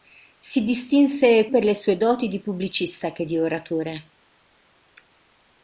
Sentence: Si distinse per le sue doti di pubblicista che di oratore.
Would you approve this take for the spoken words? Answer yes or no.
yes